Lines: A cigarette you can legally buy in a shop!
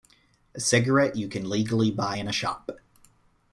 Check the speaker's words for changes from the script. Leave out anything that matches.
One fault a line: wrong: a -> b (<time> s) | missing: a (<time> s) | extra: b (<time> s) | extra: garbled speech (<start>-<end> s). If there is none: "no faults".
no faults